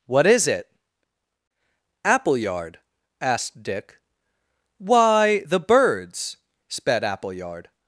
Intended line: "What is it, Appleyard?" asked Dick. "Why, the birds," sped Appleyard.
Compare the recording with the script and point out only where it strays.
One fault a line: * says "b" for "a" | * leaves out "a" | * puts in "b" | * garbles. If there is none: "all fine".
all fine